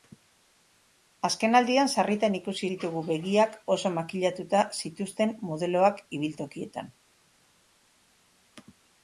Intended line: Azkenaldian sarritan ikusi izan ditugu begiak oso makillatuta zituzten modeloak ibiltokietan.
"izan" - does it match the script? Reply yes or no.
no